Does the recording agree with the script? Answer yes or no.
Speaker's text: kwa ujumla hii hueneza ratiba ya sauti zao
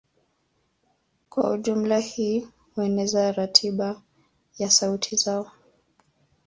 yes